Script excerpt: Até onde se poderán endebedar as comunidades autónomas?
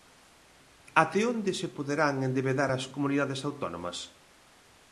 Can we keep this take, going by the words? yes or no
yes